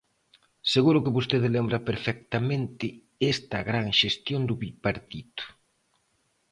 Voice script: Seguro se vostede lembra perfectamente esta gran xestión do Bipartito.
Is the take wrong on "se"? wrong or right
wrong